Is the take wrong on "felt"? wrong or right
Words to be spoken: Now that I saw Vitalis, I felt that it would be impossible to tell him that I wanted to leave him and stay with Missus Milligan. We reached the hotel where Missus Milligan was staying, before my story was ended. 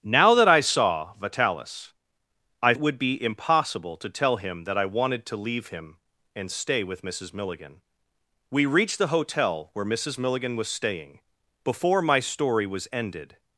wrong